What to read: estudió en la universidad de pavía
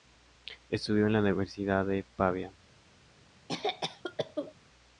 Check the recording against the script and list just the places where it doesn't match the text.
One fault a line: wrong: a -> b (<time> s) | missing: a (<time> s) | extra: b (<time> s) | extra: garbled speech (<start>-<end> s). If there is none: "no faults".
no faults